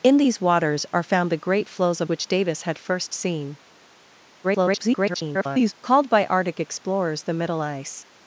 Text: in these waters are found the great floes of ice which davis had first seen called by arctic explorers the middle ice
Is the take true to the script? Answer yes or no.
no